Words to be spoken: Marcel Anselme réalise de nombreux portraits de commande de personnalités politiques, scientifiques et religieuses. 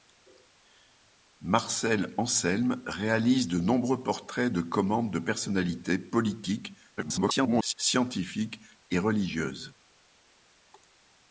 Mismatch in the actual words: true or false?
true